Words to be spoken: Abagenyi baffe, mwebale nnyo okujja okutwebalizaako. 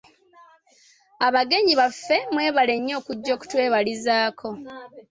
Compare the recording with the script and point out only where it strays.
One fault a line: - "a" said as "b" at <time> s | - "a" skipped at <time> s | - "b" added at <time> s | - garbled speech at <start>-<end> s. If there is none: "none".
none